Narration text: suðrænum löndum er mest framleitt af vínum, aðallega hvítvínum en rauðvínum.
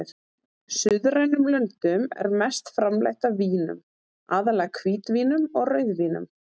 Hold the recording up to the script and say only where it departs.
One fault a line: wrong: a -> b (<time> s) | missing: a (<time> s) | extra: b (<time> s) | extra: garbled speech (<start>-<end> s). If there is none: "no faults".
wrong: en -> og (5.5 s)